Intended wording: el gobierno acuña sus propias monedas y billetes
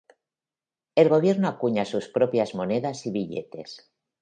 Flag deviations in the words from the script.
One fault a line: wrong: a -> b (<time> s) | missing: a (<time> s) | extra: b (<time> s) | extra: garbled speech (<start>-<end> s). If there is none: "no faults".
no faults